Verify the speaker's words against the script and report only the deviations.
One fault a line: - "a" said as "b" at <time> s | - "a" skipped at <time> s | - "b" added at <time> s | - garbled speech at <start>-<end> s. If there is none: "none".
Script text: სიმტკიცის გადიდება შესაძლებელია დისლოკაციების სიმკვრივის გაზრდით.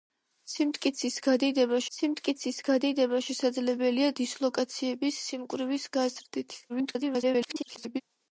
- "სიმტკიცის გადიდება" added at 2.0 s
- garbled speech at 6.7-8.0 s